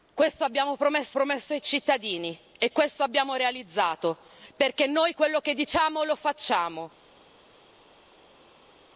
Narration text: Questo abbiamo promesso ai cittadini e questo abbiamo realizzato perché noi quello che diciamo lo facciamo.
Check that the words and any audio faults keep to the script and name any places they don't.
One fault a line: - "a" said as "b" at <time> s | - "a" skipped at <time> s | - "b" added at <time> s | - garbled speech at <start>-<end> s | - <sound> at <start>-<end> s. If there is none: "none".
- "promesso" added at 1.1 s